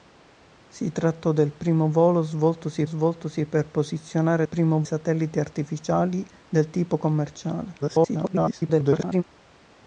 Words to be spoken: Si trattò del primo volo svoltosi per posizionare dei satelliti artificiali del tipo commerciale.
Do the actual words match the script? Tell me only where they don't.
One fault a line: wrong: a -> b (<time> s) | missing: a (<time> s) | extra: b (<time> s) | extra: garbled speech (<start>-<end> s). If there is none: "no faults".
extra: svoltosi (2.8 s)
wrong: dei -> primo (4.4 s)
extra: garbled speech (7.8-9.2 s)